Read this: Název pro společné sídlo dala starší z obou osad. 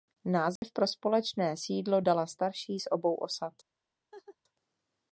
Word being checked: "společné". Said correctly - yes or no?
yes